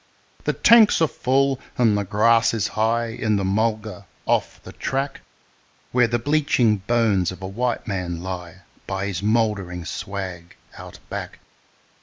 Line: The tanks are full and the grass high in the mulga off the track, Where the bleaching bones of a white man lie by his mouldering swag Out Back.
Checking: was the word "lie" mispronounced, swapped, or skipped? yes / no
no